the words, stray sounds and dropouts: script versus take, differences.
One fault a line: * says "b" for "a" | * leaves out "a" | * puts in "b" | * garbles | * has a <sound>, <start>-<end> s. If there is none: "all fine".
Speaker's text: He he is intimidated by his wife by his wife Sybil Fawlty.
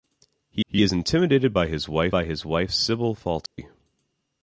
* has a dropout, 3.5-3.6 s